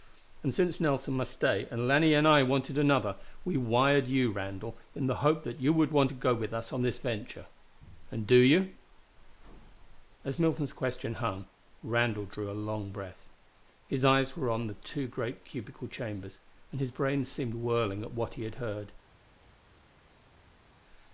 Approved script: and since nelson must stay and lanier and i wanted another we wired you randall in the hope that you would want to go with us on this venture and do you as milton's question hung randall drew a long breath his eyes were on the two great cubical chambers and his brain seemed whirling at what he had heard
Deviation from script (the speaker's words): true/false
false